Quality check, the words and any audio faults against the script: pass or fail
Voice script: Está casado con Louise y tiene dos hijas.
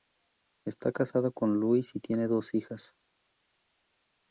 pass